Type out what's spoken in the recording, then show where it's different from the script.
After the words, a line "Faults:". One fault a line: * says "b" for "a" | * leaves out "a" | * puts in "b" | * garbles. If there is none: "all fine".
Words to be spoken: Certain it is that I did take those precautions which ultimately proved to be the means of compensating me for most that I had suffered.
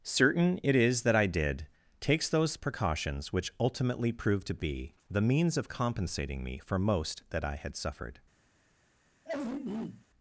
Certain it is that I did takes those precautions which ultimately proved to be the means of compensating me for most that I had suffered.
Faults:
* says "takes" for "take"